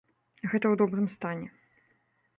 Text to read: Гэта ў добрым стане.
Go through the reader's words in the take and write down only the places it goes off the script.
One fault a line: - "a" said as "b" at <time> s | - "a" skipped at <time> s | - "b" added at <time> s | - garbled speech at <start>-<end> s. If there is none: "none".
none